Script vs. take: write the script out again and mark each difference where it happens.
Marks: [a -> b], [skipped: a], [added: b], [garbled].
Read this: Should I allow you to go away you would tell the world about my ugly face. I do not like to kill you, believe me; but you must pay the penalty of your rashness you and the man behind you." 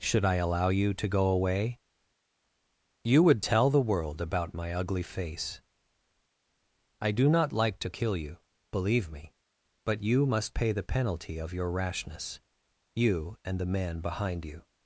Should I allow you to go away you would tell the world about my ugly face. I do not like to kill you, believe me; but you must pay the penalty of your rashness you and the man behind you."